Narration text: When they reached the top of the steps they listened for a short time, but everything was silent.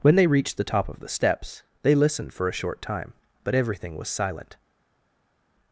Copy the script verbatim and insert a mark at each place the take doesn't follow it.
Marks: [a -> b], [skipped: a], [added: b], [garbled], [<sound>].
When they reached the top of the steps they listened for a short time, but everything was silent.